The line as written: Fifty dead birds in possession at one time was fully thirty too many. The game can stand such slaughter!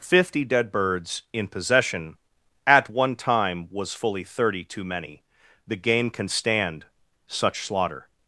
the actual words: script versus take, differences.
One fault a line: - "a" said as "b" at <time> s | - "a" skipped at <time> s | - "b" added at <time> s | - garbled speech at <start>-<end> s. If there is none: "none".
none